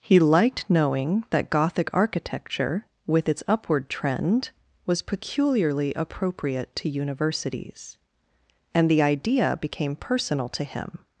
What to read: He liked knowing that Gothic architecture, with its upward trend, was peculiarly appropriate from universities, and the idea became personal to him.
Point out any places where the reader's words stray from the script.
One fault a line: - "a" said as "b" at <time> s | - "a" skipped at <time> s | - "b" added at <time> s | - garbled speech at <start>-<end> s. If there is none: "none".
- "from" said as "to" at 6.8 s